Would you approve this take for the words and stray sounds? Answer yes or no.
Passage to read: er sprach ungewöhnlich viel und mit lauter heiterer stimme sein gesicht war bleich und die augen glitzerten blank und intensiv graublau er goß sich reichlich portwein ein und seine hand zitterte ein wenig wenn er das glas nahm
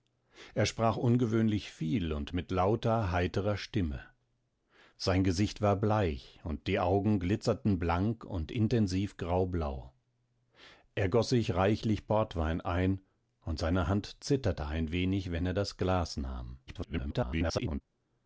no